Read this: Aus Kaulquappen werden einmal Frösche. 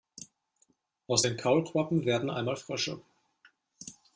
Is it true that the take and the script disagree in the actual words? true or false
true